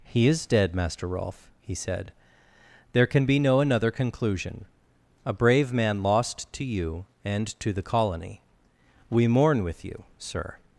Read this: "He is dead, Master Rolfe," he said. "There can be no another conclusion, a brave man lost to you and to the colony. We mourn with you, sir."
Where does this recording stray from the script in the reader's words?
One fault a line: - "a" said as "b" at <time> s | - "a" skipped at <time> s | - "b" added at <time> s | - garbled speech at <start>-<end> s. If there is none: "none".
none